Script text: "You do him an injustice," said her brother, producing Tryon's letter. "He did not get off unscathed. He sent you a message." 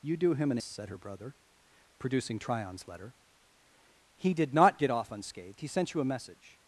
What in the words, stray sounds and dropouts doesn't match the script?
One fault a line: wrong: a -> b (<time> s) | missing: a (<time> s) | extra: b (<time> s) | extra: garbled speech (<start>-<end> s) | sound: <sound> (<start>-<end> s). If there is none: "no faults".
missing: injustice (0.6 s)